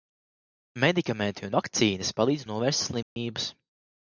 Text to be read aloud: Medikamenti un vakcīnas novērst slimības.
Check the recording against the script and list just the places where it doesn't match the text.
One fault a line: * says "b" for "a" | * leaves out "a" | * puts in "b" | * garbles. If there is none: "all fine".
* puts in "palīdz"